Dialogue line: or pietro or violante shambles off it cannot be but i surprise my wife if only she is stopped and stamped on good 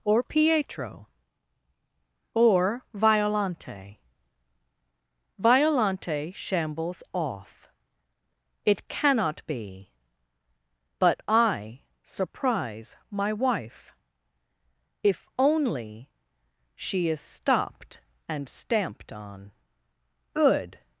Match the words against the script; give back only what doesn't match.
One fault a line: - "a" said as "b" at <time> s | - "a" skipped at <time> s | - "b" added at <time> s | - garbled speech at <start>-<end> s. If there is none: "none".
- "violante" added at 5.4 s